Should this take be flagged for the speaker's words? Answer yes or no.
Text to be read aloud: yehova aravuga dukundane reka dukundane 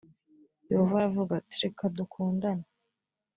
yes